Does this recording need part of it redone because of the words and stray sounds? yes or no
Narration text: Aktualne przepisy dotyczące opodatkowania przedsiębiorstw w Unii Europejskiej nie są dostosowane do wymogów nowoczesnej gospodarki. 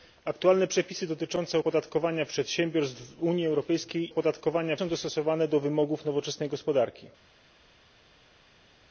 yes